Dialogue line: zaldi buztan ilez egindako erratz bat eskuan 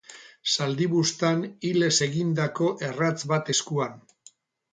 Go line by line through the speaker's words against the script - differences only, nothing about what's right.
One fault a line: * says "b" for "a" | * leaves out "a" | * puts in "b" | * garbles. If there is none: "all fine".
all fine